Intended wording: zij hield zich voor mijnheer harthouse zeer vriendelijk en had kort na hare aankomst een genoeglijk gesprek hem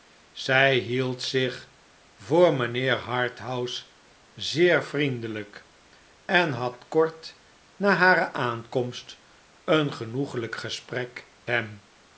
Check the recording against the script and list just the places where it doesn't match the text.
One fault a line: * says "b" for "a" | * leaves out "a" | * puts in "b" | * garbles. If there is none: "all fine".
all fine